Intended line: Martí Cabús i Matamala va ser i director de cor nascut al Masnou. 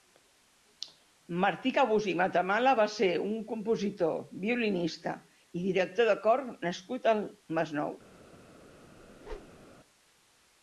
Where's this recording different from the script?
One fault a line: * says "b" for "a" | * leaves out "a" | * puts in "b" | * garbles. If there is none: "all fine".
* puts in "un compositor violinista"